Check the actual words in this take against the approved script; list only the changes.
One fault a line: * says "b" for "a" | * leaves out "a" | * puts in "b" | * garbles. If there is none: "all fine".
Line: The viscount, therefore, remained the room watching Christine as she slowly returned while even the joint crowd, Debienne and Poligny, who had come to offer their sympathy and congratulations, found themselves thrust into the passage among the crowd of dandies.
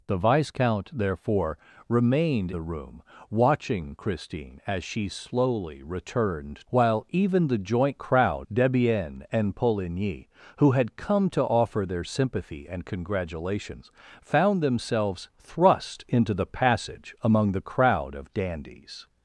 all fine